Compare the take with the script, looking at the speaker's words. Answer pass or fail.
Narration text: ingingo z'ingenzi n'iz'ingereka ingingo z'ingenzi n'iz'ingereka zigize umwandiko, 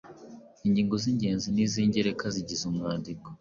fail